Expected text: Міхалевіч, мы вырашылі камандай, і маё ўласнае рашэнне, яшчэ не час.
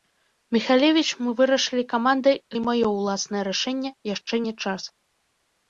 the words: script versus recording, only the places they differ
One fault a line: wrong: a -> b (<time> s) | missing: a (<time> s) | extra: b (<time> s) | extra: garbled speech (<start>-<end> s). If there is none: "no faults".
no faults